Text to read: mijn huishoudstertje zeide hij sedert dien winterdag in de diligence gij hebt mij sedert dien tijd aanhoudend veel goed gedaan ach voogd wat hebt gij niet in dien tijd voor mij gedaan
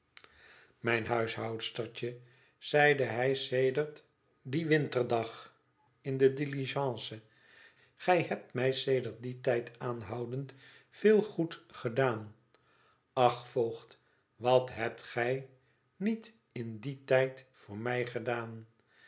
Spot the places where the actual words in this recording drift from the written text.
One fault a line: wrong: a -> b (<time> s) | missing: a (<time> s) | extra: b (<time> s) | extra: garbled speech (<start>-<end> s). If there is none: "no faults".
no faults